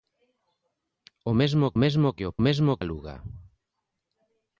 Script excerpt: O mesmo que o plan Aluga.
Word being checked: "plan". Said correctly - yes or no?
no